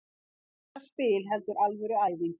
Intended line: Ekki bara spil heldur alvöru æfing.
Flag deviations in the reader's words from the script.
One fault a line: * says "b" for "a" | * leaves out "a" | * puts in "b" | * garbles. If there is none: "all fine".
all fine